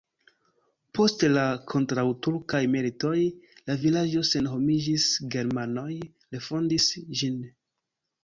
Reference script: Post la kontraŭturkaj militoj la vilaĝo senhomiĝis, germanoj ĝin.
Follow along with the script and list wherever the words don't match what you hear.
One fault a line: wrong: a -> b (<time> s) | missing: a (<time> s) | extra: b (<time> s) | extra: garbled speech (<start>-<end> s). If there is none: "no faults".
extra: refondis (6.4 s)